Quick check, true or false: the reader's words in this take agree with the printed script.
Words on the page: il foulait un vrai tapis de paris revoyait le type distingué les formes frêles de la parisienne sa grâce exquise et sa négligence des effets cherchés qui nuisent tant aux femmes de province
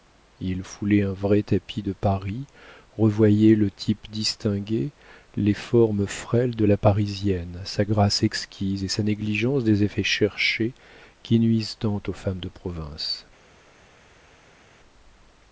true